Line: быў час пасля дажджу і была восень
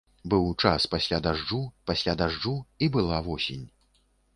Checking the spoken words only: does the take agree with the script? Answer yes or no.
no